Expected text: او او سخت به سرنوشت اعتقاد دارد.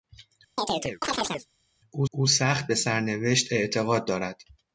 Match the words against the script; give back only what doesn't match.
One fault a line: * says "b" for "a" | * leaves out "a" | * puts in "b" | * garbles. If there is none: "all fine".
all fine